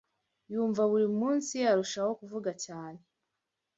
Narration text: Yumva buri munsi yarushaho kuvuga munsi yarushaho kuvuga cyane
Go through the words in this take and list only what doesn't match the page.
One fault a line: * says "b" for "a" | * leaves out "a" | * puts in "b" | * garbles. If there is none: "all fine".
* leaves out "munsi yarushaho kuvuga"